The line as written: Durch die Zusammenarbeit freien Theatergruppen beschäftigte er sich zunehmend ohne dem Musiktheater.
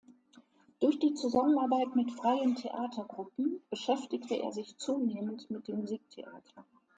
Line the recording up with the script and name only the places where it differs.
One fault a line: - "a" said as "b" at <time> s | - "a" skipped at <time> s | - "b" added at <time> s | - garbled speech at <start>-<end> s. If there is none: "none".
- "mit" added at 1.9 s
- "ohne" said as "mit" at 5.5 s